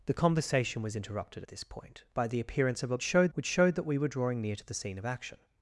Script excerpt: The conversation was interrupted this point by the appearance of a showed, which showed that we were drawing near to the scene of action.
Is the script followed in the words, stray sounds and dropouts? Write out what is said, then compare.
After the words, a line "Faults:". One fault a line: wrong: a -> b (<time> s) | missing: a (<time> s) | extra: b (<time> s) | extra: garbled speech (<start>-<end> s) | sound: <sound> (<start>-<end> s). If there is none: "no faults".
The conversation was interrupted this point by the appearance of a showed, which showed that we were drawing near to the scene of action.
Faults:
no faults